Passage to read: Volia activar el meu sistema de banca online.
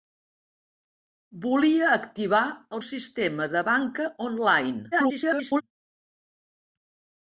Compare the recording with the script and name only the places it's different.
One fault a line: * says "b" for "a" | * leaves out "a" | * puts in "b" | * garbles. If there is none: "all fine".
* leaves out "meu"
* garbles